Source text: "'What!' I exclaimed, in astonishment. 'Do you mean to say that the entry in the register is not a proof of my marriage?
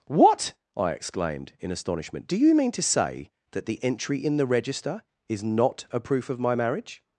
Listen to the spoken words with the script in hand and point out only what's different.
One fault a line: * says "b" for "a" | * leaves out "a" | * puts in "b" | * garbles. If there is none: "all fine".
all fine